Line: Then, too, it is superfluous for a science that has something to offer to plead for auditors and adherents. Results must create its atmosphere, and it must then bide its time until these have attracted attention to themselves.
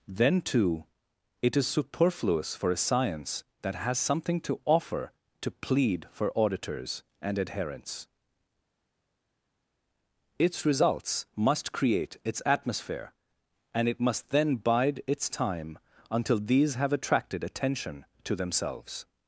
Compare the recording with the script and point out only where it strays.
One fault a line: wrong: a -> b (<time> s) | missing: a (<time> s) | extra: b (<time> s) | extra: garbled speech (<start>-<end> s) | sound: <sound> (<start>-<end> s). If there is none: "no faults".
extra: Its (10.4 s)